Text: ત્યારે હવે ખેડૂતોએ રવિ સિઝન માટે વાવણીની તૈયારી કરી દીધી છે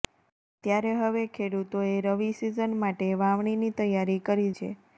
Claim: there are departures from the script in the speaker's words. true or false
true